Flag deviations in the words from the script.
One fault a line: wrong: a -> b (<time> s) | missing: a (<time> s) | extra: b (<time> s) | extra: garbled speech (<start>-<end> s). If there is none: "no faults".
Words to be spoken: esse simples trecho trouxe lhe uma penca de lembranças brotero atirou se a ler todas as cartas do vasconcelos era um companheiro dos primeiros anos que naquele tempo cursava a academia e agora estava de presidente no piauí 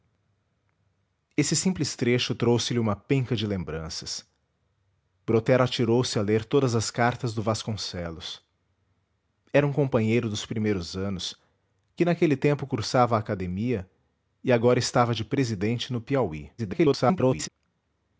extra: garbled speech (16.6-17.5 s)